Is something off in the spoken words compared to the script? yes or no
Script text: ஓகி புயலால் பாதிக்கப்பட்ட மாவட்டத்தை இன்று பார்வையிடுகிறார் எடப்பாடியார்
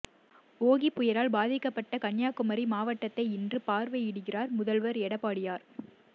yes